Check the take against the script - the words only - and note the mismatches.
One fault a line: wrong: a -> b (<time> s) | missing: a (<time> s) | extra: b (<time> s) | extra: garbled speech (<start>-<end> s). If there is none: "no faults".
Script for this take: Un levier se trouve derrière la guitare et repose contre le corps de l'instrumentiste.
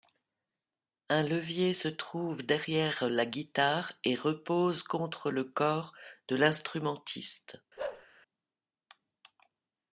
no faults